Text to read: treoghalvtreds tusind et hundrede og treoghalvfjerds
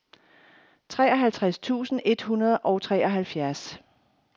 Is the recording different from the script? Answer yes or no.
no